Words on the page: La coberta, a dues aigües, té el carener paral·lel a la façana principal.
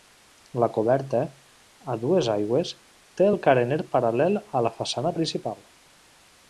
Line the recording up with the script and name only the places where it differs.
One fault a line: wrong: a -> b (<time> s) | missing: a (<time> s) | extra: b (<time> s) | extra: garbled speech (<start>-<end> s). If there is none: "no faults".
no faults